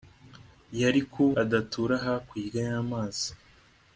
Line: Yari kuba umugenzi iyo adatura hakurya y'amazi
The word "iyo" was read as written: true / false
false